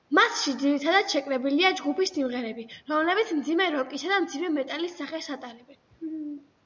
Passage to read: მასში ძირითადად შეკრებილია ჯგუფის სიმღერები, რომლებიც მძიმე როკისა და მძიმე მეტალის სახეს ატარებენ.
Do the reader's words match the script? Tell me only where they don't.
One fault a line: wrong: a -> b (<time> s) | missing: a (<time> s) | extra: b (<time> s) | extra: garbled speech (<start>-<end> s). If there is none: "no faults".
no faults